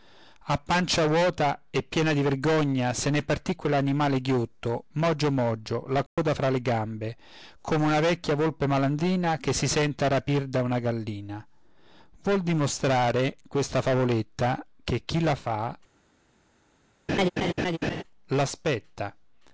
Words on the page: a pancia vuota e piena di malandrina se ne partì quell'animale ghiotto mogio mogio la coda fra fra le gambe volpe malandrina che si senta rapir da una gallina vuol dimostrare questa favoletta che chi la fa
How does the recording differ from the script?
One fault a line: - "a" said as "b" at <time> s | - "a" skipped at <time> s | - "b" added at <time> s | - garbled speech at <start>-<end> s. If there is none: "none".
- "malandrina" said as "vergogna" at 2.2 s
- "fra" skipped at 6.5 s
- "come una vecchia" added at 7.6 s